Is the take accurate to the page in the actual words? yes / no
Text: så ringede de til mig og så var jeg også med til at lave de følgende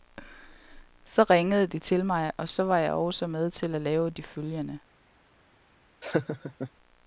yes